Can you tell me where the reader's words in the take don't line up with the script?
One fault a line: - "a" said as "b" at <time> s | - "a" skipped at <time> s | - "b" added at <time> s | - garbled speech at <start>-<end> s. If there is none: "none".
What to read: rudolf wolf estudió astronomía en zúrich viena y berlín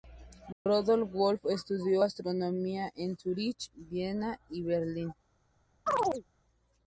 none